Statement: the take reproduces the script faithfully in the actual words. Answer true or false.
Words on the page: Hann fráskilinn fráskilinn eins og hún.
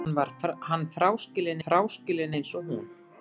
true